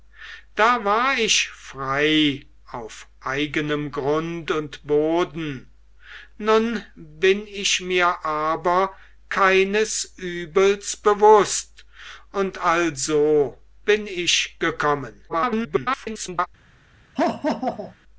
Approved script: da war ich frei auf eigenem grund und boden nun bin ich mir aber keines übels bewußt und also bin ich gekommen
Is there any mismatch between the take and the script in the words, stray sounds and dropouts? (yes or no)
yes